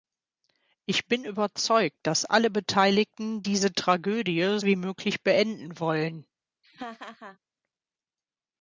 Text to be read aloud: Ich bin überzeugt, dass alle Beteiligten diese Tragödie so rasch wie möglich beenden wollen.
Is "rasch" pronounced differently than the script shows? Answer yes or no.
yes